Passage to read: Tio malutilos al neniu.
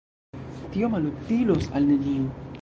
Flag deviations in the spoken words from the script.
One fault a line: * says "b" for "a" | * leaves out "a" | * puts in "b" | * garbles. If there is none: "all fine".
all fine